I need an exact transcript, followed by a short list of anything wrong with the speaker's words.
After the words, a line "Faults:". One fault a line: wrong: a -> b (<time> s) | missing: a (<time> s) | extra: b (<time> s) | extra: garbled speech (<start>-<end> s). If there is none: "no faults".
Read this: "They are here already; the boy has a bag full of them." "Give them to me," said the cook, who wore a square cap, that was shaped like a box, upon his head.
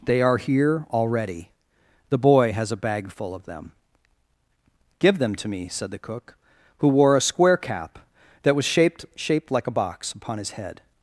"They are here already; the boy has a bag full of them." "Give them to me," said the cook, who wore a square cap, that was shaped shaped like a box, upon his head.
Faults:
extra: shaped (9.2 s)